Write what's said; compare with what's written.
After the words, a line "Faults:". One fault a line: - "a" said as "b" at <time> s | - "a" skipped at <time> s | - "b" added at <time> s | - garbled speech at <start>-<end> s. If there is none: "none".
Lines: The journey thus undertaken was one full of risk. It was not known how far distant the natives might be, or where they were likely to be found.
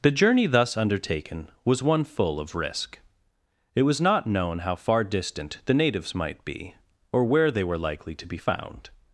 The journey thus undertaken was one full of risk. It was not known how far distant the natives might be, or where they were likely to be found.
Faults:
none